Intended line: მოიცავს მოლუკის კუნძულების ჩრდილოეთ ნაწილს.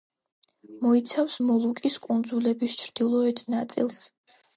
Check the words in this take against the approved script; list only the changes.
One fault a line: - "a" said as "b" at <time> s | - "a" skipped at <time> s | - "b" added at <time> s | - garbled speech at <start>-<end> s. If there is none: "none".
none